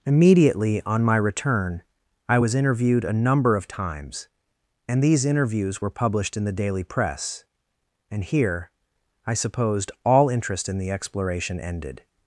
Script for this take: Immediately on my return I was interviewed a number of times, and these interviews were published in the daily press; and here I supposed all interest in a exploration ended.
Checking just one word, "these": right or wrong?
right